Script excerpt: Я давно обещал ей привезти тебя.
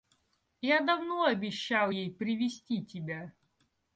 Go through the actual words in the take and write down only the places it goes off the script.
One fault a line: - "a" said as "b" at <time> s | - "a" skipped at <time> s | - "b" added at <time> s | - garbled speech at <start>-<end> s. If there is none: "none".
none